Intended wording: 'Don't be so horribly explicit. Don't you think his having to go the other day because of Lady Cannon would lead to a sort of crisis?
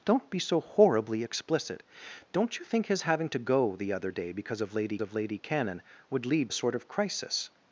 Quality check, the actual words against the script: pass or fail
fail